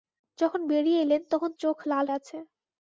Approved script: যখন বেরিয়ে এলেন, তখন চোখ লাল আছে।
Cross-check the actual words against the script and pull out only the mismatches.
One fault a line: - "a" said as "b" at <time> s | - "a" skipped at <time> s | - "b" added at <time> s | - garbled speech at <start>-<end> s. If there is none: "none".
none